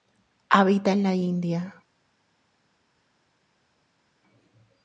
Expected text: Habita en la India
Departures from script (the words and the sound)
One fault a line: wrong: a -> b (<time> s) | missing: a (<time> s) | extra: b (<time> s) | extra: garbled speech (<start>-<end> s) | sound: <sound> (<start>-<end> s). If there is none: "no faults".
no faults